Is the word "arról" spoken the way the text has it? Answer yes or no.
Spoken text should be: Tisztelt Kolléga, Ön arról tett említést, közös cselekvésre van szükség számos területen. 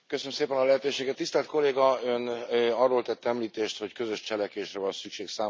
yes